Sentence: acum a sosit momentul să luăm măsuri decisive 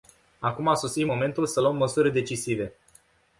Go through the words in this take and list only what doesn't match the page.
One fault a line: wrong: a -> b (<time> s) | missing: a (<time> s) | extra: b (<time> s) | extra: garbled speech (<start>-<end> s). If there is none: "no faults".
no faults